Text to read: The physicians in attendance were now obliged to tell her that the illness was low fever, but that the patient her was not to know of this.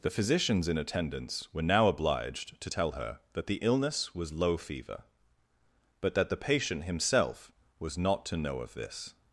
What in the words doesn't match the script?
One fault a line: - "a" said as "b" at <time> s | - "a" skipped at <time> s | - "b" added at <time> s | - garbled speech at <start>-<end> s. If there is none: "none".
- "her" said as "himself" at 6.8 s